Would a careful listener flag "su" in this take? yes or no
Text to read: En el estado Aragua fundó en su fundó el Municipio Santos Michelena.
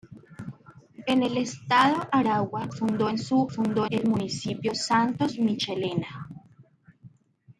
no